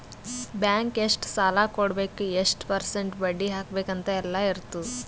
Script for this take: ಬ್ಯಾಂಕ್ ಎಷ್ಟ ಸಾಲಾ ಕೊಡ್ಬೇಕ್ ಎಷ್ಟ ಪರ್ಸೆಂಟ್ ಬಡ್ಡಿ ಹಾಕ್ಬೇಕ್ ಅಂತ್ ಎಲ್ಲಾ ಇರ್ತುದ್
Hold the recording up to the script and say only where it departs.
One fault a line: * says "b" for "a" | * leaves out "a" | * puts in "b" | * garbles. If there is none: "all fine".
all fine